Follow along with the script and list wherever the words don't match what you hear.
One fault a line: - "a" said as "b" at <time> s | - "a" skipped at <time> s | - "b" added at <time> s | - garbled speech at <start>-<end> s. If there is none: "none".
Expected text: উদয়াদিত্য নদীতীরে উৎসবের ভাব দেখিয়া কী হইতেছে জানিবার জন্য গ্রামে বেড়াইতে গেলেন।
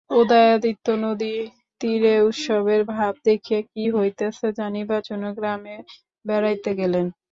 none